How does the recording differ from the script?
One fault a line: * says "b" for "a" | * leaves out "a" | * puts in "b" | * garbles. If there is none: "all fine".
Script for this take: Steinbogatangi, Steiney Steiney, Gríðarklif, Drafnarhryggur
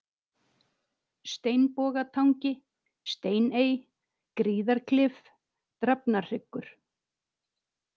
* leaves out "Steiney"